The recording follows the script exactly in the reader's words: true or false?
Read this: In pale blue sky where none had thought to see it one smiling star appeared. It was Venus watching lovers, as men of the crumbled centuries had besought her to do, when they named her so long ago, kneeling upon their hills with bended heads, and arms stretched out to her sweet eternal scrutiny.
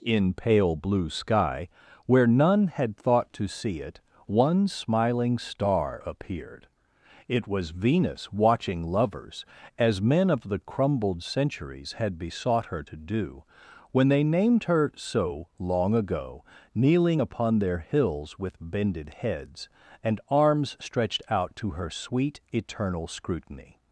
true